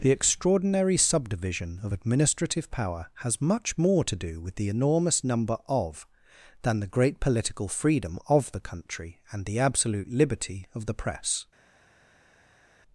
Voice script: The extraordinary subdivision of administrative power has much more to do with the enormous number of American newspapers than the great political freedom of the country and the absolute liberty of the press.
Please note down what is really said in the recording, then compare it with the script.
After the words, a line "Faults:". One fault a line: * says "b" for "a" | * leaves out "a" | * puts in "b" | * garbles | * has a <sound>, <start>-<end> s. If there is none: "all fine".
The extraordinary subdivision of administrative power has much more to do with the enormous number of than the great political freedom of the country and the absolute liberty of the press.
Faults:
* leaves out "American newspapers"